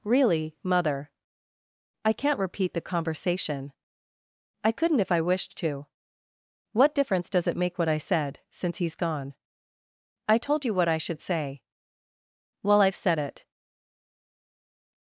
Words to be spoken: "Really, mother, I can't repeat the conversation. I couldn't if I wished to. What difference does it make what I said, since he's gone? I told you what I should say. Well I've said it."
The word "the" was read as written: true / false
true